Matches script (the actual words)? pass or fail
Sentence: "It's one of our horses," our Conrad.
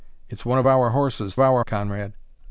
pass